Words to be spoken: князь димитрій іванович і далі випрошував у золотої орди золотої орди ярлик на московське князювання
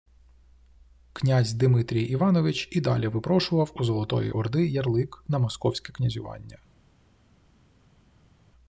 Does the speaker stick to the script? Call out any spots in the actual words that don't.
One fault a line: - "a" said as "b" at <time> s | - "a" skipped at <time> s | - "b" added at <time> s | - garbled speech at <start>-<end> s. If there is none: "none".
- "золотої орди" skipped at 4.7 s